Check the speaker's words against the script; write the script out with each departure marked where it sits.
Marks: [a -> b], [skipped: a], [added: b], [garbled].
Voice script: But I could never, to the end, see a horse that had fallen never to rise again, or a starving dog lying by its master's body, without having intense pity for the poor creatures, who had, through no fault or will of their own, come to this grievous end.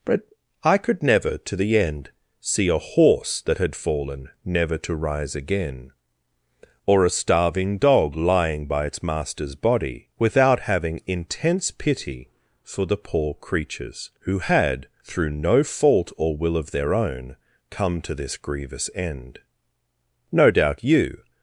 But I could never, to the end, see a horse that had fallen never to rise again, or a starving dog lying by its master's body, without having intense pity for the poor creatures, who had, through no fault or will of their own, come to this grievous end. [added: No doubt you]